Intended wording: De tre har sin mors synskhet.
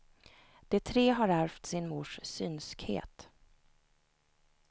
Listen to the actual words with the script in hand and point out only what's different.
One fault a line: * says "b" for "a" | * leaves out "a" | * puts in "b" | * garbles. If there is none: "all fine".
* puts in "ärvt"